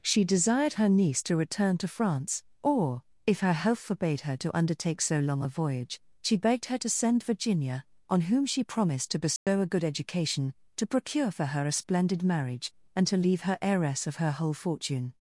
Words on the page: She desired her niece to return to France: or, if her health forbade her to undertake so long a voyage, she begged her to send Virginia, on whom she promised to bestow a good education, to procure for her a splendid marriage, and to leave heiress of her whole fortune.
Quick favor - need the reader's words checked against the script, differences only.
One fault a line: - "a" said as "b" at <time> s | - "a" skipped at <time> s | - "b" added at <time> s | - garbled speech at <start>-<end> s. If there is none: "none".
- "her" added at 13.4 s